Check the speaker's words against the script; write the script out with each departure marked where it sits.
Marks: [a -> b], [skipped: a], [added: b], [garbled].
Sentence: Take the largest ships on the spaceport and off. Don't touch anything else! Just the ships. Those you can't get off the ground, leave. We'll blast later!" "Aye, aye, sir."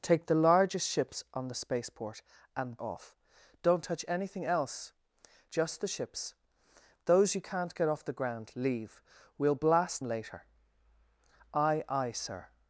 Take the largest ships on the spaceport and off. Don't touch anything else! Just the ships. Those you can't get off the ground, leave. We'll blast later!" "Aye, aye, sir."